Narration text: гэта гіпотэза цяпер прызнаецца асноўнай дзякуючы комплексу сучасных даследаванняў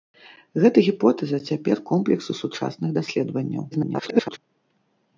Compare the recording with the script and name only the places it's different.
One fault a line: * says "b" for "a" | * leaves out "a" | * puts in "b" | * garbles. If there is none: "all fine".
* leaves out "прызнаецца асноўнай дзякуючы"
* garbles